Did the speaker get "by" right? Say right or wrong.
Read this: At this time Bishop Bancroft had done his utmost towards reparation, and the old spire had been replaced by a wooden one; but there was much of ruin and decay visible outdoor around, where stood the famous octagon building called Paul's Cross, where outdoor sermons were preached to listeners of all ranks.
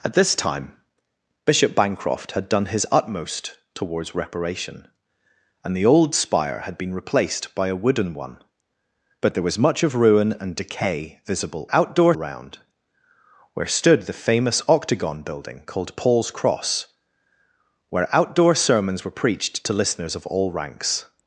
right